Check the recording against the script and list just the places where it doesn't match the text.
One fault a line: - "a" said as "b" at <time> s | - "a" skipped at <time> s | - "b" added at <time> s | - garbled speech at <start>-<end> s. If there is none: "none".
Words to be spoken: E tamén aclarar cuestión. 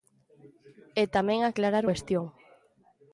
none